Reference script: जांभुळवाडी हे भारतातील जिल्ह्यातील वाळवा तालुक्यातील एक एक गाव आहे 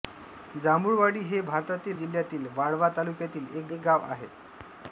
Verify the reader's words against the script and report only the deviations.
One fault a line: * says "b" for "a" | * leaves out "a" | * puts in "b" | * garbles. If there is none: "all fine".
all fine